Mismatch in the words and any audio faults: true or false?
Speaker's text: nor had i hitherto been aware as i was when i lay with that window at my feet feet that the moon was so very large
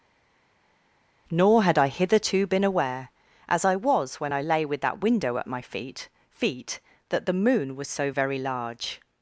false